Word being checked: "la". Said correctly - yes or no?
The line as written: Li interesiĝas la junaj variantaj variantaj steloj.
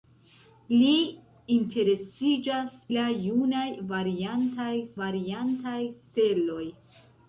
yes